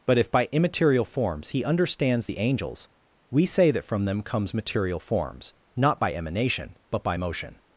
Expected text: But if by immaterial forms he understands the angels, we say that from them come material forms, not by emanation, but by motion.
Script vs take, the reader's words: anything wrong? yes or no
yes